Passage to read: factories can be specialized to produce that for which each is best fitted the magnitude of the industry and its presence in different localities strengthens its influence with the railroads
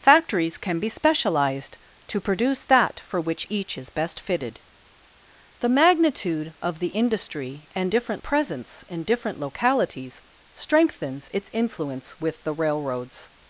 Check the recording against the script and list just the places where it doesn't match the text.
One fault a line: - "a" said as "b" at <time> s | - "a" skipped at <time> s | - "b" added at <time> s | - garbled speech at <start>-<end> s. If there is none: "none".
- "its" said as "different" at 7.9 s